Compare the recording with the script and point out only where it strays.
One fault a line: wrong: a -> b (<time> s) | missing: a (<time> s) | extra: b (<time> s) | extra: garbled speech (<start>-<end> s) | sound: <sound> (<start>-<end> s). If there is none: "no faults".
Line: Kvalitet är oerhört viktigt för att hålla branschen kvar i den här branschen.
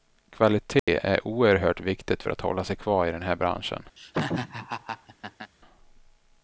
sound: dropout (0.8-0.9 s)
wrong: branschen -> sig (2.6 s)
sound: laugh (4.0-5.5 s)